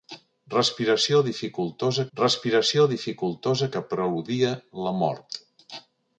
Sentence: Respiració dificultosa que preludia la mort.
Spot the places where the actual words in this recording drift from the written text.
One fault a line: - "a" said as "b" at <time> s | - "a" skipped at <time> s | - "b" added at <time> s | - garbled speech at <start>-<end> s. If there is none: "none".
- "respiració dificultosa" added at 2.2 s